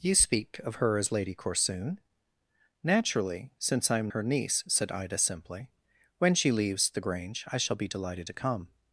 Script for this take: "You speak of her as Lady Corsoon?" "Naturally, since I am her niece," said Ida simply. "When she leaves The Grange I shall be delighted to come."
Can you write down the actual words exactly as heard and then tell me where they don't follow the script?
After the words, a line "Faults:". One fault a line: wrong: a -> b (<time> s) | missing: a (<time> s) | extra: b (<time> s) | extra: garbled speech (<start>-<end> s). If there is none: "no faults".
"You speak of her as Lady Corsoon?" "Naturally, since I am her niece," said Ida simply. "When she leaves The Grange I shall be delighted to come."
Faults:
no faults